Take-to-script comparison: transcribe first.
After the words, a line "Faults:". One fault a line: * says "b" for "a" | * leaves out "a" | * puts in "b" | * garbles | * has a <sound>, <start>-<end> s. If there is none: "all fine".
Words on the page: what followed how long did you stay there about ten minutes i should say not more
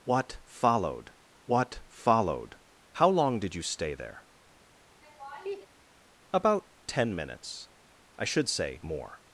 what followed what followed how long did you stay there about ten minutes i should say more
Faults:
* puts in "what followed"
* has a laugh, 5.0-5.7 s
* leaves out "not"